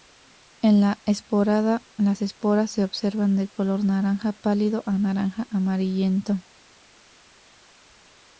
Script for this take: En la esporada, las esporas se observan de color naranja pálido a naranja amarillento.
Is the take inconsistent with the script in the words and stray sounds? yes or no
no